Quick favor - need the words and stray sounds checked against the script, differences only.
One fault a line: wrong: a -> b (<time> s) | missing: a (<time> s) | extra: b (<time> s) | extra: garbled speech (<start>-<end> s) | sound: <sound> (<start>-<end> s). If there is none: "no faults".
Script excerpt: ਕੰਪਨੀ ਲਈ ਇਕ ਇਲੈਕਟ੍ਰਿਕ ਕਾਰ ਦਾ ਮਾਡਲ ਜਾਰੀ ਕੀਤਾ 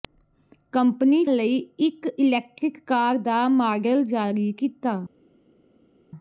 no faults